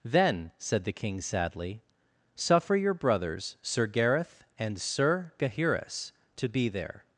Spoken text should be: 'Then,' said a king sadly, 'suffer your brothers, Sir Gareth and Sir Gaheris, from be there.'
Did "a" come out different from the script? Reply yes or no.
yes